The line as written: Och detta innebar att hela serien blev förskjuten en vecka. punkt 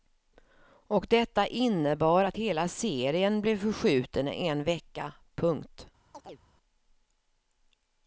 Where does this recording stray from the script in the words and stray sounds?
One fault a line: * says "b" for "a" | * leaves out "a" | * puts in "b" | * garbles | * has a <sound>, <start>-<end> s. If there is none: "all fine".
* has a chirp, 6.1-6.4 s